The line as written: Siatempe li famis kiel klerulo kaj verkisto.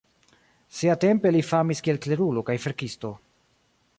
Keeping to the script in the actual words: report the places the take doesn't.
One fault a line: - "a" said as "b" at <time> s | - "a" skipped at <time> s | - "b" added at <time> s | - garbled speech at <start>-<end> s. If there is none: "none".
none